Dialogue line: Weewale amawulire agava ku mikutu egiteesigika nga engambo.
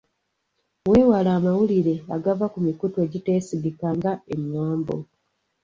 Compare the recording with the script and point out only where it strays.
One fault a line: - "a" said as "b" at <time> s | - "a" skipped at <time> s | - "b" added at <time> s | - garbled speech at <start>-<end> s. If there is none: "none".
none